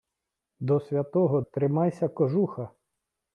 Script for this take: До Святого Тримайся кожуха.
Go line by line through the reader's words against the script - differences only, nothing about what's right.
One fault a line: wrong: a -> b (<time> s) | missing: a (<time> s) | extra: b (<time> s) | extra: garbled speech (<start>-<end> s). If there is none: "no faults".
no faults